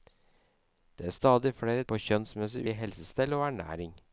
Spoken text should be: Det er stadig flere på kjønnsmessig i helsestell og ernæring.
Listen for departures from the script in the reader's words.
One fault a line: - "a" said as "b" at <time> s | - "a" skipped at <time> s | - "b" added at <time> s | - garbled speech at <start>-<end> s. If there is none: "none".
none